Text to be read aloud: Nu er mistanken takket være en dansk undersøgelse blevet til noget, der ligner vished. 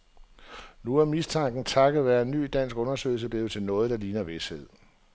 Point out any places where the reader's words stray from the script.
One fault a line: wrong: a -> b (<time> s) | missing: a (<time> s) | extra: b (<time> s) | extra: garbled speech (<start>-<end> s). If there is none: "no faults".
extra: ny (2.3 s)